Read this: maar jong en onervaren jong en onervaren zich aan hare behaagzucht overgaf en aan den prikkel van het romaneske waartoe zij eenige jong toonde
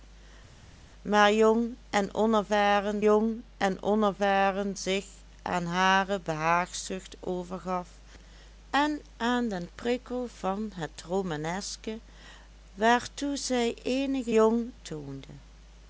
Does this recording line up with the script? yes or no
yes